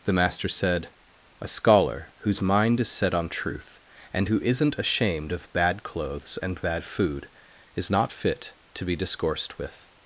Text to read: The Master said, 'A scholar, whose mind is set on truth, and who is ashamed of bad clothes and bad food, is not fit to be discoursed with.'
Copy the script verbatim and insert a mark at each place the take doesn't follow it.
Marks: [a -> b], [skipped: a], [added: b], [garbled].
The Master said, 'A scholar, whose mind is set on truth, and who [is -> isn't] ashamed of bad clothes and bad food, is not fit to be discoursed with.'